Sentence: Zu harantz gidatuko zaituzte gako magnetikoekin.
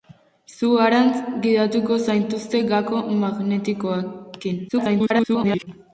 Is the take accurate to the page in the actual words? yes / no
no